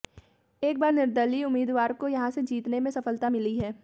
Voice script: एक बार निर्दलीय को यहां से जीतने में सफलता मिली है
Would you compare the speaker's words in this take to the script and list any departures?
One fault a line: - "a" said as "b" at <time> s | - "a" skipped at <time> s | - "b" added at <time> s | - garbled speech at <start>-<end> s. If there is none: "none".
- "उम्मीदवार" added at 1.4 s